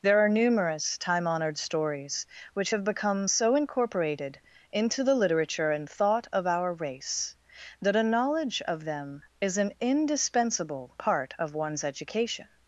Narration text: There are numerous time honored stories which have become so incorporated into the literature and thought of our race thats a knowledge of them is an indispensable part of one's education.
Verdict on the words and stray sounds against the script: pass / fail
fail